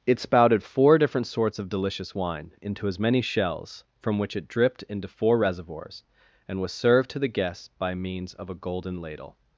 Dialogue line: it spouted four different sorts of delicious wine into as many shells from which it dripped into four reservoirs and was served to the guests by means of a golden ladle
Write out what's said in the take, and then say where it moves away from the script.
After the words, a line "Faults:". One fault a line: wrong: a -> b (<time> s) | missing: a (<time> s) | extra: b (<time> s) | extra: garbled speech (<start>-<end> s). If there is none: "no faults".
it spouted four different sorts of delicious wine into as many shells from which it dripped into four reservoirs and was served to the guests by means of a golden ladle
Faults:
no faults